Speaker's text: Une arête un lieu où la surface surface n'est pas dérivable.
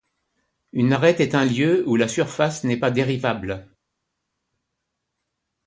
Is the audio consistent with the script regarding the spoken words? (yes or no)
no